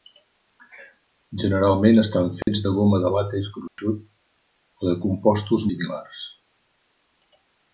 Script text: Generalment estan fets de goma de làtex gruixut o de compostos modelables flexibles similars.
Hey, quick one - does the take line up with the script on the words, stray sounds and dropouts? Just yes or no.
no